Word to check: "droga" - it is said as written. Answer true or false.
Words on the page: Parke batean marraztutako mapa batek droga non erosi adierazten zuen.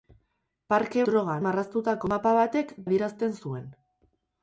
false